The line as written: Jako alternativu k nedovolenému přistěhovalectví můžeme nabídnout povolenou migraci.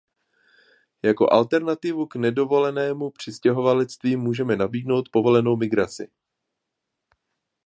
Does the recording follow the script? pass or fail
pass